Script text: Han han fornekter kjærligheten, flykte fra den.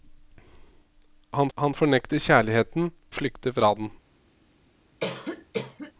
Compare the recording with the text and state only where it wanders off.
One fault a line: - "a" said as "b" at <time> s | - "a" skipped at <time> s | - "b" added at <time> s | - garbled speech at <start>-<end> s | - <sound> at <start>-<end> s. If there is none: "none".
- cough at 5.0-5.9 s